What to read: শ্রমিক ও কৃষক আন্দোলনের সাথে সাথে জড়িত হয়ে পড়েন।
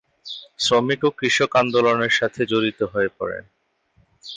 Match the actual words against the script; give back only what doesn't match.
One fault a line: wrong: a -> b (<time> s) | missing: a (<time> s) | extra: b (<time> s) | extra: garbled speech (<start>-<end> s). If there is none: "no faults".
missing: সাথে (2.4 s)